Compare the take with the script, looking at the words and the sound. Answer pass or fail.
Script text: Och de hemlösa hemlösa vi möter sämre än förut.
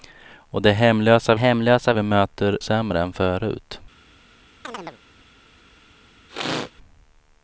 fail